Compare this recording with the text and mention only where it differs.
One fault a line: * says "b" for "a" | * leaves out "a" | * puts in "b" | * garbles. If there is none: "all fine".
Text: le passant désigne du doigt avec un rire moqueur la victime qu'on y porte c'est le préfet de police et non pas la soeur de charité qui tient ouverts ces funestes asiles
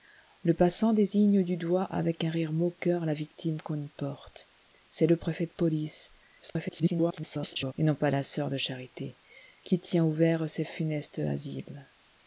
* garbles